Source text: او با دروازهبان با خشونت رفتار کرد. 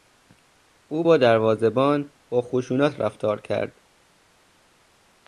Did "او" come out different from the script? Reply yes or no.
no